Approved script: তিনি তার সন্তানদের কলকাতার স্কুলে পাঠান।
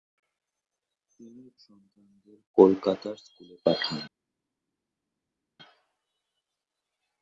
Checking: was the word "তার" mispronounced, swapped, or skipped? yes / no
yes